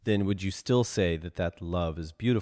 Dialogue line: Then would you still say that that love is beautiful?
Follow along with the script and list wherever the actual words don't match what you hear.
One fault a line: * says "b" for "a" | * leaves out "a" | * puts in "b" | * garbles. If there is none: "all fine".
all fine